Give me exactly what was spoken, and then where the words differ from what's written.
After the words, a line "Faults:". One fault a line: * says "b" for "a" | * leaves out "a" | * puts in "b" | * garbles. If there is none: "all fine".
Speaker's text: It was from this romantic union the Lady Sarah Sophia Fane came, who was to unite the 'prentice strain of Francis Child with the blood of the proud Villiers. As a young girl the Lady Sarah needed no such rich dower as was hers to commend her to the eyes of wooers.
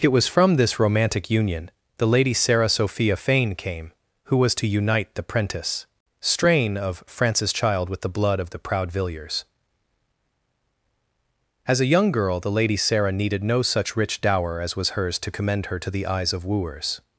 It was from this romantic union the Lady Sarah Sophia Fane came, who was to unite the 'prentice strain of Francis Child with the blood of the proud Villiers. As a young girl the Lady Sarah needed no such rich dower as was hers to commend her to the eyes of wooers.
Faults:
all fine